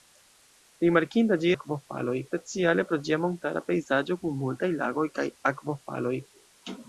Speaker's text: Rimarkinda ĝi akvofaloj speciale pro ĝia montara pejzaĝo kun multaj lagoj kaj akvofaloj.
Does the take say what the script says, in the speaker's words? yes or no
yes